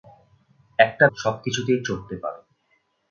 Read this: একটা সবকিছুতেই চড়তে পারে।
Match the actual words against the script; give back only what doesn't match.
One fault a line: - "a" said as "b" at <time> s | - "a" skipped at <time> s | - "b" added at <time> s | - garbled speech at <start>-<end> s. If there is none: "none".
none